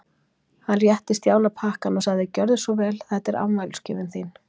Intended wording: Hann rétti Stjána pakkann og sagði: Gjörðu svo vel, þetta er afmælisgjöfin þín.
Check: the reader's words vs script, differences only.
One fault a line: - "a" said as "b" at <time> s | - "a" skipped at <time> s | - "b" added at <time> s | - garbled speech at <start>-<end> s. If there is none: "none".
none